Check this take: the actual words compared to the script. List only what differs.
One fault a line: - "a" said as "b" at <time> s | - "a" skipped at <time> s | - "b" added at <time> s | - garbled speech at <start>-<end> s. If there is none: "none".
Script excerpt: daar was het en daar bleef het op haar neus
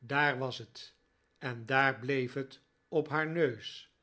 none